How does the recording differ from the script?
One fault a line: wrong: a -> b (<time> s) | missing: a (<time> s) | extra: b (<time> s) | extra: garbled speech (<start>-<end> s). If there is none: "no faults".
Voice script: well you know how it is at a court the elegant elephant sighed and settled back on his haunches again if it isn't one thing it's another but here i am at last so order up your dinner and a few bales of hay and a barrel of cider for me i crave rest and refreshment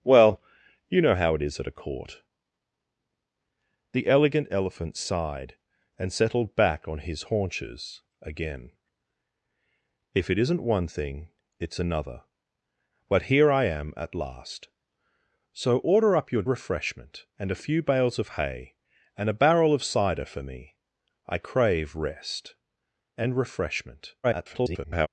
wrong: dinner -> refreshment (16.5 s)
extra: garbled speech (24.2-25.1 s)